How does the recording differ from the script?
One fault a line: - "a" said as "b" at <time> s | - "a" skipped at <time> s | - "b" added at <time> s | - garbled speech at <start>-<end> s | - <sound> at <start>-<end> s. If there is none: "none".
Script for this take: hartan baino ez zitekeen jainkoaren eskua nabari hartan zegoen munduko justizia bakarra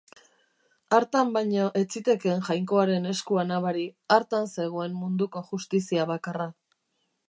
none